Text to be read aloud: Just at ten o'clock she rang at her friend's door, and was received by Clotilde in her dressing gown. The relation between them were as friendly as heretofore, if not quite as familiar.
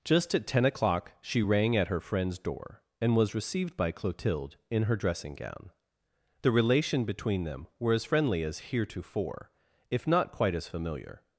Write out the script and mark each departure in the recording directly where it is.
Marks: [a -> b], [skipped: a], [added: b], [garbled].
Just at ten o'clock she rang at her friend's door, and was received by Clotilde in her dressing gown. The relation between them were as friendly as heretofore, if not quite as familiar.